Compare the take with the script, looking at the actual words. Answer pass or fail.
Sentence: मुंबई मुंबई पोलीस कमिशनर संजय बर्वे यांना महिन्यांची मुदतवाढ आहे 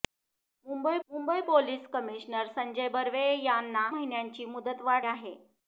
pass